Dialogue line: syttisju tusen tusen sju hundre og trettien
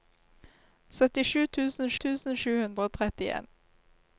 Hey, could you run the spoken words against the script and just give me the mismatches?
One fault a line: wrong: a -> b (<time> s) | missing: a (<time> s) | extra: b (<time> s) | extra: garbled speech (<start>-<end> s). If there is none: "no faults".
no faults